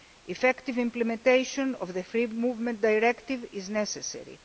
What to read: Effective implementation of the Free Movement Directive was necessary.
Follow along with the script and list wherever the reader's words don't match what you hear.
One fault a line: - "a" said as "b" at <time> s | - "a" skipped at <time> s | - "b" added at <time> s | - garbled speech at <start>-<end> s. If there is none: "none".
- "was" said as "is" at 3.5 s